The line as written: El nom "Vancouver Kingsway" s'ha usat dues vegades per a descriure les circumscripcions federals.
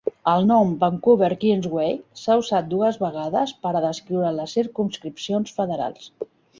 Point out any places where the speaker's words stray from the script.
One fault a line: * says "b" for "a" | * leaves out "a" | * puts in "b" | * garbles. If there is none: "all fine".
all fine